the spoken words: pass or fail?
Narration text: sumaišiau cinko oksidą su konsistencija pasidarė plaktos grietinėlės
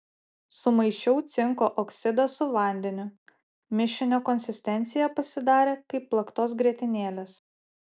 fail